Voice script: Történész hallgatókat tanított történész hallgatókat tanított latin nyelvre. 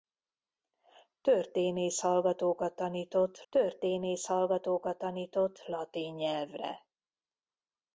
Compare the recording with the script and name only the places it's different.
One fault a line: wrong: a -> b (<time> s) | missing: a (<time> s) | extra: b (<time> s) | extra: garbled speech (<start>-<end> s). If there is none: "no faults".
no faults